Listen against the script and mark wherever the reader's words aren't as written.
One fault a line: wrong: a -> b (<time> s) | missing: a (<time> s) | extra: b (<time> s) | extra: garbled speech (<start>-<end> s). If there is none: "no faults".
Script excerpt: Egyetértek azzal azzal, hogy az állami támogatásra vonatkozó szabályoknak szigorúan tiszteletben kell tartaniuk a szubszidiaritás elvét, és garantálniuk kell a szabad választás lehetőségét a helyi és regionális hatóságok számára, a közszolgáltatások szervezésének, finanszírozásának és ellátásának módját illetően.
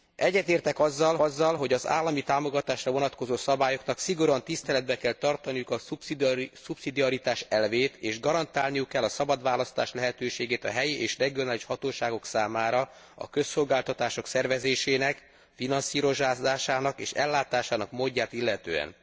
no faults